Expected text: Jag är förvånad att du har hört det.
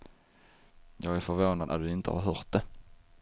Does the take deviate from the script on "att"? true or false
false